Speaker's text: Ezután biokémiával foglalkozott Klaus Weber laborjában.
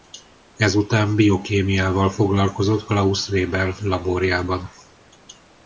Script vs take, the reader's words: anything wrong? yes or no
no